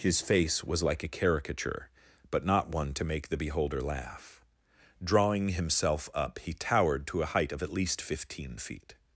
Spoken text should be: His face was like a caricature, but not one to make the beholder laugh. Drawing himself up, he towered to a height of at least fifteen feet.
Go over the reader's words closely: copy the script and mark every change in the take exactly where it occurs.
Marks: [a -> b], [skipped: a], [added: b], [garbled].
His face was like a caricature, but not one to make the beholder laugh. Drawing himself up, he towered to a height of at least fifteen feet.